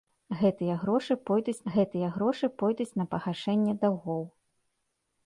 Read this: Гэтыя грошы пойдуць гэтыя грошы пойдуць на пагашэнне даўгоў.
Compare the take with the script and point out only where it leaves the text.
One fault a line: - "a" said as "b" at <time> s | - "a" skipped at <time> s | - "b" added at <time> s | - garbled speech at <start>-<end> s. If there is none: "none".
none